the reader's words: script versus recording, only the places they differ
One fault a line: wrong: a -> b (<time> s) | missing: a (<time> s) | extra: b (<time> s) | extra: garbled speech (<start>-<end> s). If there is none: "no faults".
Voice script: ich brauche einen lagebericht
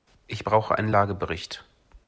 no faults